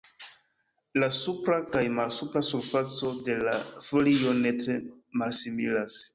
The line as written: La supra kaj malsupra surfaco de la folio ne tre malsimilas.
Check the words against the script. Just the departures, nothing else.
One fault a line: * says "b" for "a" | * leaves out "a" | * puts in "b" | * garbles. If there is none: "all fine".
all fine